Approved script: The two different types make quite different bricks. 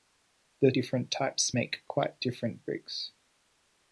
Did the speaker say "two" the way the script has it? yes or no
no